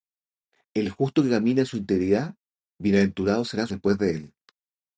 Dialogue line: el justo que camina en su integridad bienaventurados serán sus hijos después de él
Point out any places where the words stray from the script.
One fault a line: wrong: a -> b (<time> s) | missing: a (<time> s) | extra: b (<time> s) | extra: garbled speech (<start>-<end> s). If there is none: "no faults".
missing: sus hijos (3.7 s)